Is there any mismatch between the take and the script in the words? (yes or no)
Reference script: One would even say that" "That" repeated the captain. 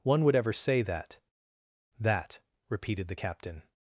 yes